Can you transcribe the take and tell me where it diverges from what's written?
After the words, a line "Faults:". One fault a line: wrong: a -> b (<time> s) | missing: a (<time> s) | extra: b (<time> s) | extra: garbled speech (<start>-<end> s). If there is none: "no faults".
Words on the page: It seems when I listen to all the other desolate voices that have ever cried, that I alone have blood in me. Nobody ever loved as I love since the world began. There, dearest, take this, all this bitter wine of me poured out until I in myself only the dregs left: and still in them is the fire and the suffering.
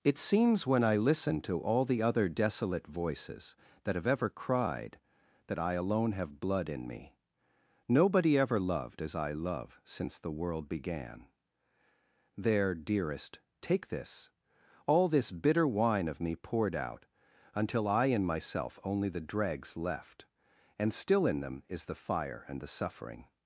It seems when I listen to all the other desolate voices that have ever cried, that I alone have blood in me. Nobody ever loved as I love since the world began. There, dearest, take this, all this bitter wine of me poured out until I in myself only the dregs left: and still in them is the fire and the suffering.
Faults:
no faults